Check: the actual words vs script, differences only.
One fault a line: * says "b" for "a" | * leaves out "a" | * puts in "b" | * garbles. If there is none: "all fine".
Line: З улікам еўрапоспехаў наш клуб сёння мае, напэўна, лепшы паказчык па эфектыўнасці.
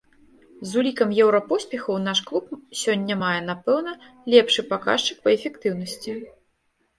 all fine